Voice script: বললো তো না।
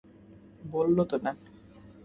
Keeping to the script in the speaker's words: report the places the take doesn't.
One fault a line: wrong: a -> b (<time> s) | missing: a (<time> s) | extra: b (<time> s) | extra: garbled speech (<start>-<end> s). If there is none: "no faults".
no faults